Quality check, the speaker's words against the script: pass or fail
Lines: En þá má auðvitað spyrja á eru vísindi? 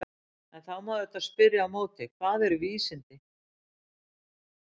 fail